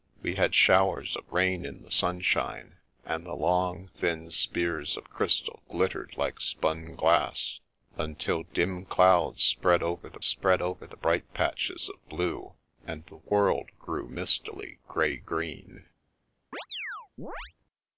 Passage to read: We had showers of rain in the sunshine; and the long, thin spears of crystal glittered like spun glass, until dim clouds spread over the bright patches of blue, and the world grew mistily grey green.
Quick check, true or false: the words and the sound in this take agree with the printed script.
false